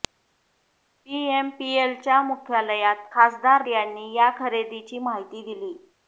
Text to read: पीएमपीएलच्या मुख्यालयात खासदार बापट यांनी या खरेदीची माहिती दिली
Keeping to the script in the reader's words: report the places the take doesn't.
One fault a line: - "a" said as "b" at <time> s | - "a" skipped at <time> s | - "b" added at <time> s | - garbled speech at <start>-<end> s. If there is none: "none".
- "बापट" skipped at 3.6 s